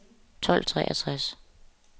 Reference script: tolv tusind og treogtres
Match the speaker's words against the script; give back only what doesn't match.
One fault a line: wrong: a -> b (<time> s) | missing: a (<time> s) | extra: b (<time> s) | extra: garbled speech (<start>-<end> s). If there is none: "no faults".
missing: tusind og (0.7 s)